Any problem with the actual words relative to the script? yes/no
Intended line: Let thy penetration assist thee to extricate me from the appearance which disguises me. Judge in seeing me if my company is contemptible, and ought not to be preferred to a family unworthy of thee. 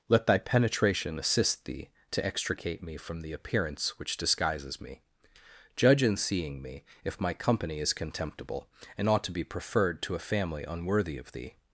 yes